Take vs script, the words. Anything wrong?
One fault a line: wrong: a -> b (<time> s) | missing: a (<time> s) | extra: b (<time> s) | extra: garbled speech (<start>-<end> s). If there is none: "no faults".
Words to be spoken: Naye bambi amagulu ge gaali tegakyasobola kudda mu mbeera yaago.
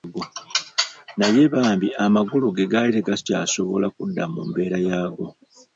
no faults